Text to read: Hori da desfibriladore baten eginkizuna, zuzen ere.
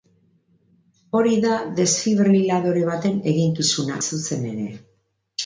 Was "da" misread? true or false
false